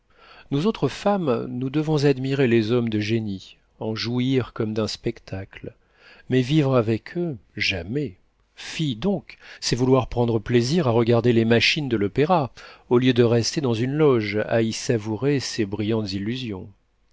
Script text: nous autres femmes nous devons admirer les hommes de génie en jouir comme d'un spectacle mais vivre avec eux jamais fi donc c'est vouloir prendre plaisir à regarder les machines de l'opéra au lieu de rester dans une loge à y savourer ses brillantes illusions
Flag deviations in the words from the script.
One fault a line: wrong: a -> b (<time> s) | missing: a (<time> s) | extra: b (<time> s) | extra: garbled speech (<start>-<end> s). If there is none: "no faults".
no faults